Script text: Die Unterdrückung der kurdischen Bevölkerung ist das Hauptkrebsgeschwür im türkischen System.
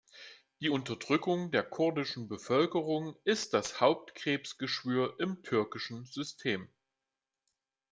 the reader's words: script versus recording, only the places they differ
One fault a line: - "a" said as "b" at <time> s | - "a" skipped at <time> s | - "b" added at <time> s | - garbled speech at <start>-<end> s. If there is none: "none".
none